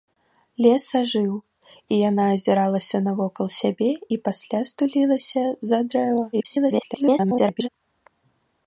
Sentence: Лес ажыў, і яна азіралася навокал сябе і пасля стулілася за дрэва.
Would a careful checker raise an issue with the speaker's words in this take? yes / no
yes